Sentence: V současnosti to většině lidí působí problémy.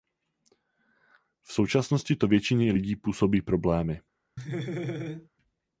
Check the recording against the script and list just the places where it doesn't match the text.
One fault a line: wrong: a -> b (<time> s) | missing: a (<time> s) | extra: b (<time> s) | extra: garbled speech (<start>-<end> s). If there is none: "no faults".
no faults